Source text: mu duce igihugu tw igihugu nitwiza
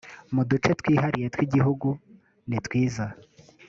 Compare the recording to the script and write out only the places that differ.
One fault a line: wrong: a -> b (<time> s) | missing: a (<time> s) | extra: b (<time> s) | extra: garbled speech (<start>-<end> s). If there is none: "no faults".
wrong: igihugu -> twihariye (0.8 s)